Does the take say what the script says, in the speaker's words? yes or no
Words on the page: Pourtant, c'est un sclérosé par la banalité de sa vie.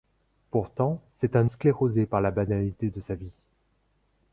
yes